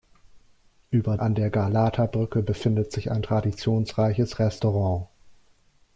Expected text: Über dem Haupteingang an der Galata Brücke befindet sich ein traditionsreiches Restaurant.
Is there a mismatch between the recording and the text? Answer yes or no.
yes